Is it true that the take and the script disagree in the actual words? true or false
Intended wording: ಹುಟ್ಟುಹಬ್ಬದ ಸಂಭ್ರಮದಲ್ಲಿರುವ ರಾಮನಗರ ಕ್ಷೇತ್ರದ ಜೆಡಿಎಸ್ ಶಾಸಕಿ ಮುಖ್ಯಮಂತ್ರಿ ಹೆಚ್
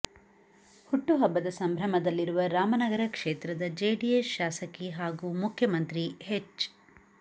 true